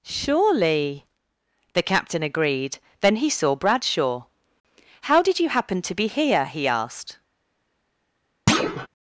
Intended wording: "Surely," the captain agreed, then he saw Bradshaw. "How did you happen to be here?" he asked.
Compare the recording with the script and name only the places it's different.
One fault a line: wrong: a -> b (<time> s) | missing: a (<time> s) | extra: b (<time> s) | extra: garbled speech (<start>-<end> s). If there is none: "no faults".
no faults